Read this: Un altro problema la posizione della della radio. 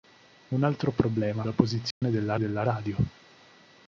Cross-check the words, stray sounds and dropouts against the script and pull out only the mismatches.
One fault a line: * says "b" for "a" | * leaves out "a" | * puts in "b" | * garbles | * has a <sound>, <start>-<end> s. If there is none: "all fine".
* has a dropout, 1.9-2.0 s